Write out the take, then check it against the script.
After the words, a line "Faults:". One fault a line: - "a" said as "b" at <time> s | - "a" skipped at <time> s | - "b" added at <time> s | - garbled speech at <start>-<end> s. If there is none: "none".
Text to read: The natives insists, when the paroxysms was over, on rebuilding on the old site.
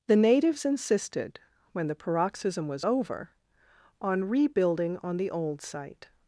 The natives insisted, when the paroxysm was over, on rebuilding on the old site.
Faults:
- "insists" said as "insisted" at 0.7 s
- "paroxysms" said as "paroxysm" at 1.9 s